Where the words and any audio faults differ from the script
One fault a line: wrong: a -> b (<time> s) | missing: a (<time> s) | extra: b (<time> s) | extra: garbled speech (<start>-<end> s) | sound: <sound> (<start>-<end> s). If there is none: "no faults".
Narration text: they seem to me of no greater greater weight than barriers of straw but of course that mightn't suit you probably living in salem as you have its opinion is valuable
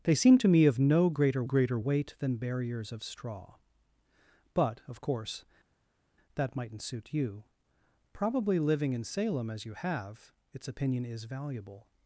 no faults